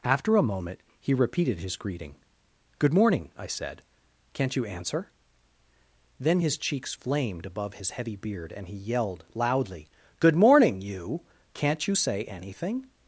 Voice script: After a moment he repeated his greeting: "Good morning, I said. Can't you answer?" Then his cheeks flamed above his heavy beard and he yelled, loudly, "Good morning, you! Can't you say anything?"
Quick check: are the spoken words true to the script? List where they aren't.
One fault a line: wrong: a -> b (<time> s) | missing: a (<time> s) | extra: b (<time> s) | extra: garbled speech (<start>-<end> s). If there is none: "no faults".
no faults